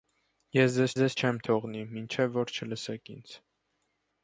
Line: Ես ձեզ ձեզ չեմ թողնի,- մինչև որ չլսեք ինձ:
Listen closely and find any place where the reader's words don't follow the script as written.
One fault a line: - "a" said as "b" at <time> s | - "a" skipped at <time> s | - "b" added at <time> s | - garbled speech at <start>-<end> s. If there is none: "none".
none